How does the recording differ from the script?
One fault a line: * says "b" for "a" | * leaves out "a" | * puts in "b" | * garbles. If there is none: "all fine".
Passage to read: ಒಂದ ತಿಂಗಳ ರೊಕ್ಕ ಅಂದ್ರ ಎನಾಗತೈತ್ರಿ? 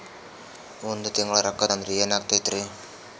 all fine